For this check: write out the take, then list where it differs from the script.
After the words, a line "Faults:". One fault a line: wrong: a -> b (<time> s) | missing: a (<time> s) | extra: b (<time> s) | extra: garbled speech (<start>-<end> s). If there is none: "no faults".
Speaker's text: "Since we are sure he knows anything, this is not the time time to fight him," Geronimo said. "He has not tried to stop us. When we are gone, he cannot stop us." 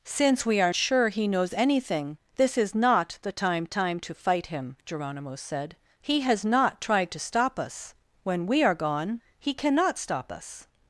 "Since we are sure he knows anything, this is not the time time to fight him," Geronimo said. "He has not tried to stop us. When we are gone, he cannot stop us."
Faults:
no faults